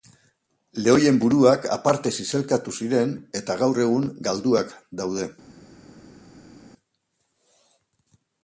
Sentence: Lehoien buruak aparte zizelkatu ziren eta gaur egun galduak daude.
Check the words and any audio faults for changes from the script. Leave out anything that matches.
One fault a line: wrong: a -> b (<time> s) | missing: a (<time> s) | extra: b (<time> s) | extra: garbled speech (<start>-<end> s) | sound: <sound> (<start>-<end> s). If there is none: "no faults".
no faults